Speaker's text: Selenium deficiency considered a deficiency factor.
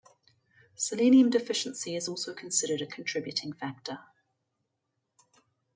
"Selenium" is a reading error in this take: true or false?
false